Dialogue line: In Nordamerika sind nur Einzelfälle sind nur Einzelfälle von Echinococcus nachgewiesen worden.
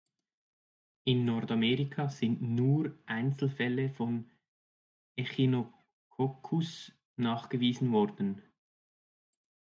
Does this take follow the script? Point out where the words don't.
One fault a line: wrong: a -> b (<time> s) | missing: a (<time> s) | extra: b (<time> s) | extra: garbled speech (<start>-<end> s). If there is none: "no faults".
missing: sind nur Einzelfälle (3.9 s)